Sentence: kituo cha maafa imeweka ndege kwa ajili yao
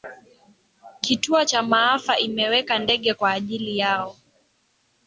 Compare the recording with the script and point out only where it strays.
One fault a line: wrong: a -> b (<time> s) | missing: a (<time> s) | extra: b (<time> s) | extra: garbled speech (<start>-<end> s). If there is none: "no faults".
no faults